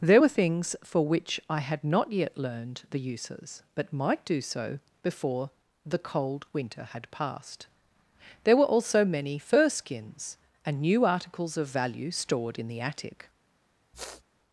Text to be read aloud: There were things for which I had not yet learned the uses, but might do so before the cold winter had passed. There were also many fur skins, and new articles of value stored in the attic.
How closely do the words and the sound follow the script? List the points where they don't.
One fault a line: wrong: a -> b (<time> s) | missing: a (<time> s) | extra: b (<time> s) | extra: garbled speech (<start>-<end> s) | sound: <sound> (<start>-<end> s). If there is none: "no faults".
sound: sniff (13.9-14.2 s)